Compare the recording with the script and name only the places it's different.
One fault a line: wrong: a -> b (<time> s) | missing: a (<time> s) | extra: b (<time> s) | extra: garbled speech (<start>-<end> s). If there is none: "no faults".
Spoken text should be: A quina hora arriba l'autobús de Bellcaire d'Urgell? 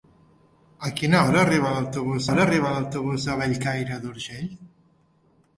extra: hora arriba l'autobús (2.3 s)